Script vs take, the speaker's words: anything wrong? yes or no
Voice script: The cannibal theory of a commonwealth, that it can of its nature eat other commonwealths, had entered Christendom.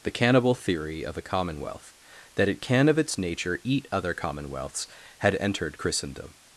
no